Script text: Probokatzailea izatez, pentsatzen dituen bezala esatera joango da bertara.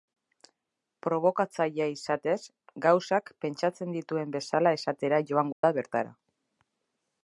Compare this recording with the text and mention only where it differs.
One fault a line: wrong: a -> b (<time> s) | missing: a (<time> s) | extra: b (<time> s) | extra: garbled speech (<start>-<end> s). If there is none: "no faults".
extra: gauzak (2.9 s)